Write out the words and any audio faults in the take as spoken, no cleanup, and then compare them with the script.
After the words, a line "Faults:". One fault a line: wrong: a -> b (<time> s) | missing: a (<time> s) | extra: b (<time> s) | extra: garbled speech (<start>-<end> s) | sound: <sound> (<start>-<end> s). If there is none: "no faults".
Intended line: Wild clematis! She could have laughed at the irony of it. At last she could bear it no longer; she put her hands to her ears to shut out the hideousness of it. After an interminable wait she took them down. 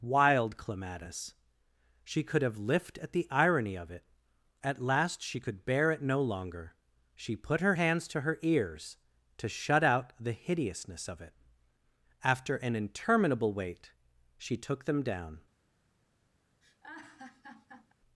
Wild clematis! She could have lift at the irony of it. At last she could bear it no longer; she put her hands to her ears to shut out the hideousness of it. After an interminable wait she took them down.
Faults:
wrong: laughed -> lift (2.6 s)
sound: laugh (16.6-17.9 s)